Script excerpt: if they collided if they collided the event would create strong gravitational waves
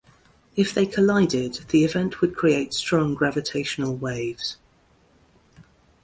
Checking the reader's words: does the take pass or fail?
fail